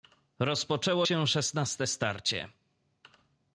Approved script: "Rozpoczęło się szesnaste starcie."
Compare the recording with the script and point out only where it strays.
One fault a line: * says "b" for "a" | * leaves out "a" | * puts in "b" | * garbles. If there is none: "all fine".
all fine